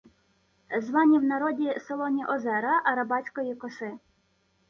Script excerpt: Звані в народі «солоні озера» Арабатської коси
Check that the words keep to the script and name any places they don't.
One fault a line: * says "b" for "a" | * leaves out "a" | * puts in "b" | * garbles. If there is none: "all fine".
all fine